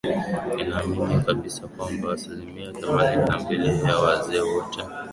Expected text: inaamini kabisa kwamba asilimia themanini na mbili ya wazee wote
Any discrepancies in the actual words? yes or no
no